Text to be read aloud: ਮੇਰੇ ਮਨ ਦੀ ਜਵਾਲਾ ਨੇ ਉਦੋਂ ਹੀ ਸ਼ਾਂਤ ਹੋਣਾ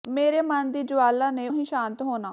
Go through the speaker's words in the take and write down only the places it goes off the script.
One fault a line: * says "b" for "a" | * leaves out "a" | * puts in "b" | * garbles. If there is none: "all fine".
* leaves out "ਉਦੋਂ"